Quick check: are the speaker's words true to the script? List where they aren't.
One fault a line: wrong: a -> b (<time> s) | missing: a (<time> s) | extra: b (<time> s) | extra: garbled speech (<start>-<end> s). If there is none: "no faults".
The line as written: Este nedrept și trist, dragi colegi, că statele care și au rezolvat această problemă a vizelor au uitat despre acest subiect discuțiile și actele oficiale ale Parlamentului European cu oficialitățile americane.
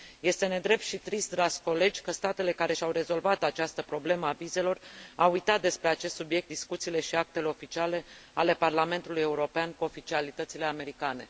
no faults